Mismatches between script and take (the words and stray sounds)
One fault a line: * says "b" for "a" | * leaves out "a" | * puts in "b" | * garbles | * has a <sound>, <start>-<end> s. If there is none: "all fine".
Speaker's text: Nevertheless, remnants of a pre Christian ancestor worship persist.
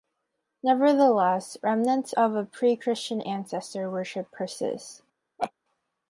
* has a laugh, 5.4-5.5 s